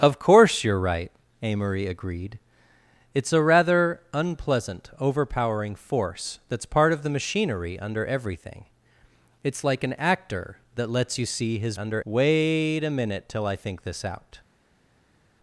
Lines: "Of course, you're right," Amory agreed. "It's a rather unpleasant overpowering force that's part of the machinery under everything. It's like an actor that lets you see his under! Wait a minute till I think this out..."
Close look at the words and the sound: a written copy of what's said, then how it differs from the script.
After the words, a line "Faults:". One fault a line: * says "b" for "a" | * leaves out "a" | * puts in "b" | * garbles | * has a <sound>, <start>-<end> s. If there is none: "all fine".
"Of course, you're right," Amory agreed. "It's a rather unpleasant overpowering force that's part of the machinery under everything. It's like an actor that lets you see his under! Wait a minute till I think this out..."
Faults:
all fine